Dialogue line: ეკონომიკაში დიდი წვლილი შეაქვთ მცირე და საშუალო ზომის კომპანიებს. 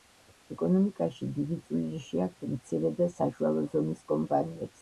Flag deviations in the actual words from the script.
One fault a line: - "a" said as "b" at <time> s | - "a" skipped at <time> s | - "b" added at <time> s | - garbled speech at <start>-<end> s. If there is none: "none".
none